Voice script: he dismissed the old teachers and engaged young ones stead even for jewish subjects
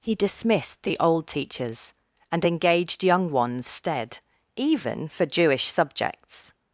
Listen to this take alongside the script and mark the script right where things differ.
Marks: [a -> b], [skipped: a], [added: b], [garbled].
he dismissed the old teachers and engaged young ones stead even for jewish subjects